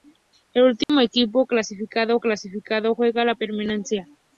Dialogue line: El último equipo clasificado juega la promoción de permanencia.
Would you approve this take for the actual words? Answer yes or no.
no